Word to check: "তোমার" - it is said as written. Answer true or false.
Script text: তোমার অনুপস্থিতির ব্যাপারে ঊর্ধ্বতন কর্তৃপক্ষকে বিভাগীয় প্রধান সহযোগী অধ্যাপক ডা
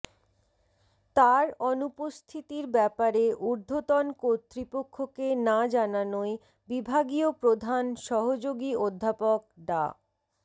false